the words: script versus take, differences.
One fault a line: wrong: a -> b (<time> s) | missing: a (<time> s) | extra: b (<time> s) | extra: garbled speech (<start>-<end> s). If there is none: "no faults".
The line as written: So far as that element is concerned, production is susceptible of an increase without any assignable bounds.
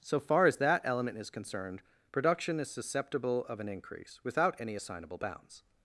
no faults